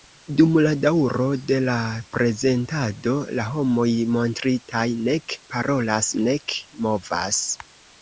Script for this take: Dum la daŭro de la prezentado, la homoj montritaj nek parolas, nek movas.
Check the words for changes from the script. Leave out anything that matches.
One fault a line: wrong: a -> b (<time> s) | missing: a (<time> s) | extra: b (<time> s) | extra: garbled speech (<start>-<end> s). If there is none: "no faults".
no faults